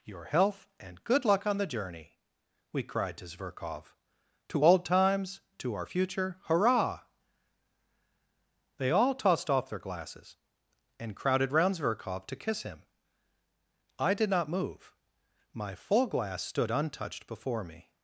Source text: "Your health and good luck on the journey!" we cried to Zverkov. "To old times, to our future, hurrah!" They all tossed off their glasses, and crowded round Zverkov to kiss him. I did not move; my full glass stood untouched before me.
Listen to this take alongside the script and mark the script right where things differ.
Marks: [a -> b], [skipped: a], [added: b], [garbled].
"Your health and good luck on the journey!" we cried to Zverkov. "To old times, to our future, hurrah!" They all tossed off their glasses, and crowded round Zverkov to kiss him. I did not move; my full glass stood untouched before me.